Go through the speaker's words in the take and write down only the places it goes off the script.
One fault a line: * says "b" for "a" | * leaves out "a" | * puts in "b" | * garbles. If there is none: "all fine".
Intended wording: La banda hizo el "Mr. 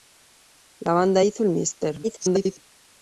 * garbles